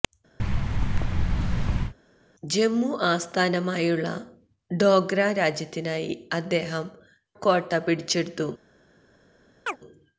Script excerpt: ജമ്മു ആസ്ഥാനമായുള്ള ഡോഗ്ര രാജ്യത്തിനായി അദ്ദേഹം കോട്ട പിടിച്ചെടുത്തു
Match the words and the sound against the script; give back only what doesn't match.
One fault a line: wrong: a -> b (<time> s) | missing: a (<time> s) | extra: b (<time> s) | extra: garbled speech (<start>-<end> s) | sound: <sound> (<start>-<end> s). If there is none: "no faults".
sound: thud (0.4-1.9 s)
sound: chirp (9.7-9.8 s)